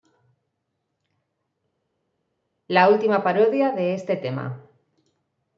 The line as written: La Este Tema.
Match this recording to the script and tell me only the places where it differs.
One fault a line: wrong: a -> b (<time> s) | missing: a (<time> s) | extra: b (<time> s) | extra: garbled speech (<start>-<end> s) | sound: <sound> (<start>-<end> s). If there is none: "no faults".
extra: Última parodia de (2.9 s)